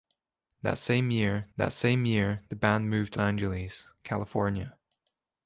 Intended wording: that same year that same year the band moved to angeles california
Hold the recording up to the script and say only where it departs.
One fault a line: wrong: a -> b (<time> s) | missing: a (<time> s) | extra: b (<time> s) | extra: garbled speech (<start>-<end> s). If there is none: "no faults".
no faults